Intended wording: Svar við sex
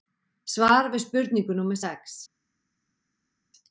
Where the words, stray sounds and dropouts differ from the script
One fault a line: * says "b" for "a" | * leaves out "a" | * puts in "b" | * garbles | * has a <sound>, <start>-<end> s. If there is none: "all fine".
* puts in "spurningu númer"